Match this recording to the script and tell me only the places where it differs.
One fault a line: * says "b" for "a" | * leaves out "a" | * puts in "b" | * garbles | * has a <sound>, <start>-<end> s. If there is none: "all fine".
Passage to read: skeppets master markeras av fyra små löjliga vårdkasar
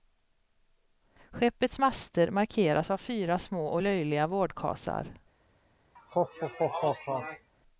* puts in "och"
* has a laugh, 6.0-7.5 s